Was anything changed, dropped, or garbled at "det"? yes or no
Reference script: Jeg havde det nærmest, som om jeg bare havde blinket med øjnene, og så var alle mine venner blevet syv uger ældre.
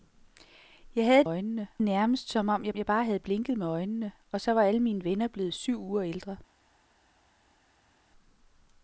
yes